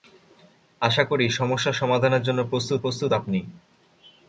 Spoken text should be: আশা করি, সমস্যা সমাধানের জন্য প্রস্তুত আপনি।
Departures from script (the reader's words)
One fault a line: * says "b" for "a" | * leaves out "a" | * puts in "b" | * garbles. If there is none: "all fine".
* puts in "প্রস্তুত"